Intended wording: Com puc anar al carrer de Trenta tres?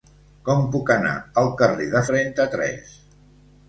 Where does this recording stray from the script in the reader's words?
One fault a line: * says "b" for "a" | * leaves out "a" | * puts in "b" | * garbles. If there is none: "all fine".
all fine